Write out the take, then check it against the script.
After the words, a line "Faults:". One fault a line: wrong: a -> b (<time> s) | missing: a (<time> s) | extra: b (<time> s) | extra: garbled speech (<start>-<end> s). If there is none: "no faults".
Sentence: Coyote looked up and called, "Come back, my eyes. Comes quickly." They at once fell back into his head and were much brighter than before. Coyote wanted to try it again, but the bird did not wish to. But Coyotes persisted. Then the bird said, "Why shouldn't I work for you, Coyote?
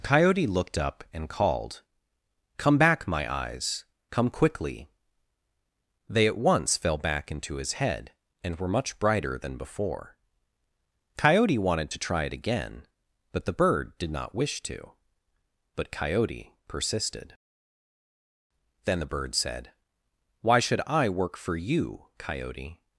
Coyote looked up and called, "Come back, my eyes. Come quickly." They at once fell back into his head and were much brighter than before. Coyote wanted to try it again, but the bird did not wish to. But Coyote persisted. Then the bird said, "Why should I work for you, Coyote?
Faults:
wrong: Comes -> Come (4.1 s)
wrong: Coyotes -> Coyote (15.9 s)
wrong: shouldn't -> should (20.6 s)